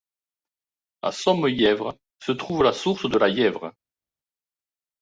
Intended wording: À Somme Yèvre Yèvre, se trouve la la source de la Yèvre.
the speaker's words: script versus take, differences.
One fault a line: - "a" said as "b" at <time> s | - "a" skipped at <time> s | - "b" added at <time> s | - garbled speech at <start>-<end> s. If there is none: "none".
- "Yèvre" skipped at 1.9 s
- "la" skipped at 2.7 s